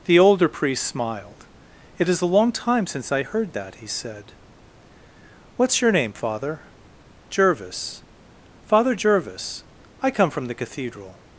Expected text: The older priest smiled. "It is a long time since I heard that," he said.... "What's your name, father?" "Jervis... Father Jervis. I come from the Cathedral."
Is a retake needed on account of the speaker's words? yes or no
no